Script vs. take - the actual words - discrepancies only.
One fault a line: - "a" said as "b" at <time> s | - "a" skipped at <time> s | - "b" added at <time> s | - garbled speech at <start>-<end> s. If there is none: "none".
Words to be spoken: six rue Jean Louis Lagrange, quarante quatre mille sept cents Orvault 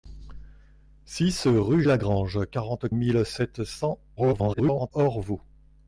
- "Jean Louis" skipped at 1.8 s
- "quatre" skipped at 2.9 s
- garbled speech at 4.2-4.9 s